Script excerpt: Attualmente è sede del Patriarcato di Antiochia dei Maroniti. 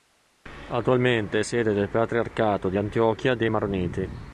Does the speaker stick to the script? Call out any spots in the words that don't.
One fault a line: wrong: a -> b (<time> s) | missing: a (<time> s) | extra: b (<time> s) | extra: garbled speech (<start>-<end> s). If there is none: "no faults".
no faults